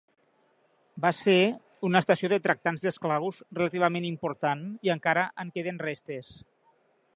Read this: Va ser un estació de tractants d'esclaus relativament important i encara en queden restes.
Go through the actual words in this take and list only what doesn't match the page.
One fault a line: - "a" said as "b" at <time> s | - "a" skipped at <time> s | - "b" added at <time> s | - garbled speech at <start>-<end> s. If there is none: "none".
- "un" said as "una" at 1.9 s